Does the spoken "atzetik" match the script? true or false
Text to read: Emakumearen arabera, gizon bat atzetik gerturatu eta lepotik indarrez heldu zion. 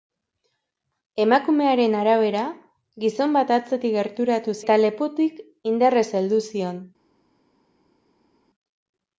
true